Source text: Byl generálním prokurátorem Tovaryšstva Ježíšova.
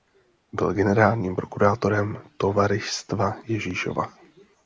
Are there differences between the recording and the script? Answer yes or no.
no